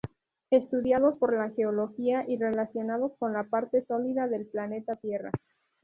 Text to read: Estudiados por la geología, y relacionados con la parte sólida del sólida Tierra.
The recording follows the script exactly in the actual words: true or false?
false